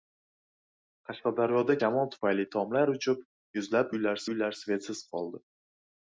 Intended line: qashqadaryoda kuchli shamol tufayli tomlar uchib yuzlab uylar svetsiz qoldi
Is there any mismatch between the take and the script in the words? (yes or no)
yes